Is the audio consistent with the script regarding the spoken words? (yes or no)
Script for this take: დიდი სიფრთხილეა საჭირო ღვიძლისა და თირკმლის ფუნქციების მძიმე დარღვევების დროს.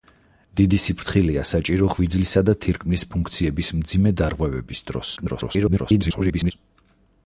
no